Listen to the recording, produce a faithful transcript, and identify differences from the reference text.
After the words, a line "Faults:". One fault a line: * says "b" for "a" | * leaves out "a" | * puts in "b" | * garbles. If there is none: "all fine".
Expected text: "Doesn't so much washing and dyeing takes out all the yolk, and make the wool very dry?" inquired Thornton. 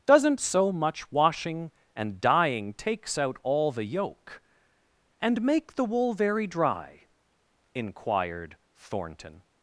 "Doesn't so much washing and dyeing takes out all the yolk, and make the wool very dry?" inquired Thornton.
Faults:
all fine